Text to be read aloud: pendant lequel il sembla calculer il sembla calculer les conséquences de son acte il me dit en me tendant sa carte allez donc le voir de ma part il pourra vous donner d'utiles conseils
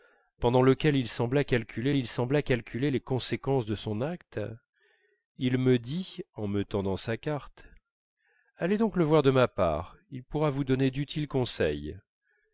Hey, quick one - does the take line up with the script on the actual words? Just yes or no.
yes